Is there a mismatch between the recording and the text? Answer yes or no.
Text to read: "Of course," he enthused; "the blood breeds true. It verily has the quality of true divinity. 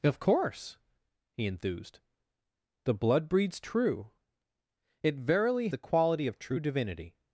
yes